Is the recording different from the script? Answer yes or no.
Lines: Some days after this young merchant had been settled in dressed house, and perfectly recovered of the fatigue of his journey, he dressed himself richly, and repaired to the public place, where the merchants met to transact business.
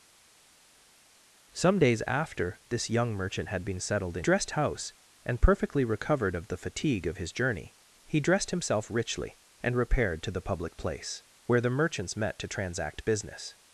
no